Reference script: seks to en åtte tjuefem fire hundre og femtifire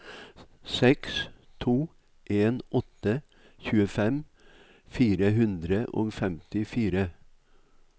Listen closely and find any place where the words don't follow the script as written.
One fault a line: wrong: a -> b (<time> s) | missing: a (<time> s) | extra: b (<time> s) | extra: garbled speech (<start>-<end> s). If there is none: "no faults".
no faults